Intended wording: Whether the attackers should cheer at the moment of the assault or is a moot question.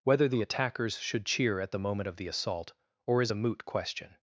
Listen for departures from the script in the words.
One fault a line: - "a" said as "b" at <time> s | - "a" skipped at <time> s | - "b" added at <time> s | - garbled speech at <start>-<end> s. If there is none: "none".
none